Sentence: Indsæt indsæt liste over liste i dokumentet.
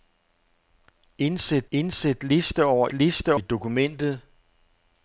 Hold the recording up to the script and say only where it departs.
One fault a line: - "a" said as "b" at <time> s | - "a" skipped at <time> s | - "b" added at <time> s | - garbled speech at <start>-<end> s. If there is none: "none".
none